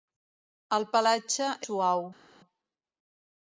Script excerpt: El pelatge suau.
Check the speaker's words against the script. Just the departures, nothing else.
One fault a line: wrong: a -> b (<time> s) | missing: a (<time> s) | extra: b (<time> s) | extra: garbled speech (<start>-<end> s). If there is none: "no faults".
no faults